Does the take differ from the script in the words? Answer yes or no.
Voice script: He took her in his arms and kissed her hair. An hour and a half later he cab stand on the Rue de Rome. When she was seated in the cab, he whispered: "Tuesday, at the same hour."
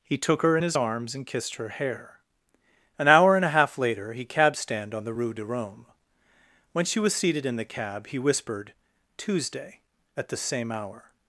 no